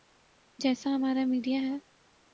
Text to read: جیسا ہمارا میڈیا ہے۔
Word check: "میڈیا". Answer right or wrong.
right